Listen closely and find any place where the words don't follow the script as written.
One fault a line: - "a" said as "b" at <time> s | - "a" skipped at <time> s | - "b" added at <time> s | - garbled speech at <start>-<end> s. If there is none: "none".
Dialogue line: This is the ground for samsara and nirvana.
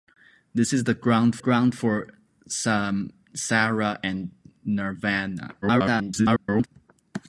- "ground" added at 1.4 s
- garbled speech at 5.6-6.7 s